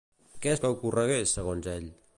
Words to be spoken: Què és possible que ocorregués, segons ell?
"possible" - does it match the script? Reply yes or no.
no